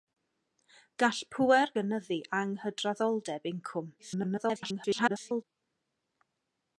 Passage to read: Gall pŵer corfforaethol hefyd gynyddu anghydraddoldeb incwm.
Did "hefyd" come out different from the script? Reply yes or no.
yes